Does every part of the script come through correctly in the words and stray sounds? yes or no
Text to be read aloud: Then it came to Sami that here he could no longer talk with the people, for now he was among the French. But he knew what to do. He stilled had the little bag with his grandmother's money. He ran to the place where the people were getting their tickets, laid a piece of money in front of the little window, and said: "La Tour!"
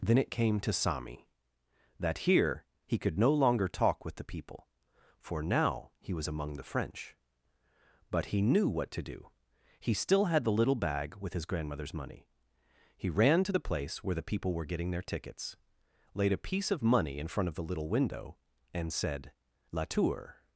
no